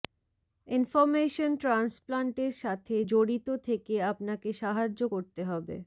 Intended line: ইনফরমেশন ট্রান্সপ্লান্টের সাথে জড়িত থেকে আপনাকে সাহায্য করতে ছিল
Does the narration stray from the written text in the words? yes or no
yes